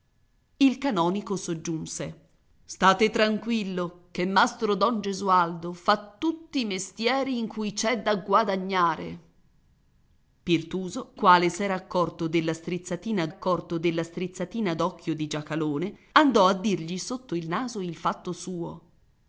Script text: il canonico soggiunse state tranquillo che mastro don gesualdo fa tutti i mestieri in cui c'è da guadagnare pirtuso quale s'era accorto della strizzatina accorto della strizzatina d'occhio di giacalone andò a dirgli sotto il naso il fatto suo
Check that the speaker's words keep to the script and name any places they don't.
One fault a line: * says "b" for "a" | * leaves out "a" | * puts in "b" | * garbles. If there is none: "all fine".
all fine